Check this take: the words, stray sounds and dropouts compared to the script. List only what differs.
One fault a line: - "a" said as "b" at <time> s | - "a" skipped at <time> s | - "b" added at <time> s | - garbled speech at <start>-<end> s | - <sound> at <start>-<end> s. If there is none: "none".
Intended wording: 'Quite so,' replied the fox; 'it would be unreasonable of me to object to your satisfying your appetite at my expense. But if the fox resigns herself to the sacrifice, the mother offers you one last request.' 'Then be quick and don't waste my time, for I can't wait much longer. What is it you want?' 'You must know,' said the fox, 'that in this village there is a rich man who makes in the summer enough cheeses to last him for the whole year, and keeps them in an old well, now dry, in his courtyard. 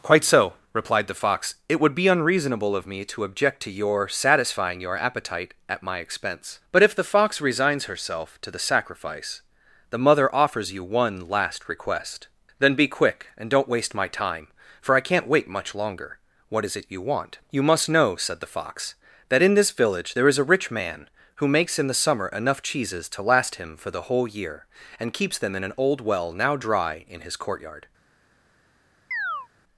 - chirp at 29.1-29.5 s